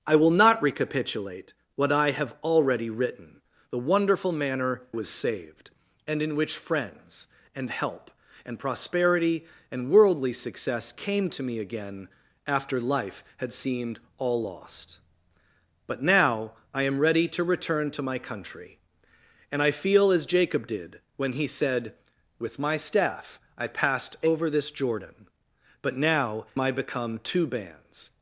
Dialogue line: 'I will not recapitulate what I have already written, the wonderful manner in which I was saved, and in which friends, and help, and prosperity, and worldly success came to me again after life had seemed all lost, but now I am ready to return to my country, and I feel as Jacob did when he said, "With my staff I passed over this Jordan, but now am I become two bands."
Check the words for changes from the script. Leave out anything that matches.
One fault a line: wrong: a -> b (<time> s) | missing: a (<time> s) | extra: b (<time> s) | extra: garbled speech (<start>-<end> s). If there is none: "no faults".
missing: in which I (4.8 s)
missing: am (26.5 s)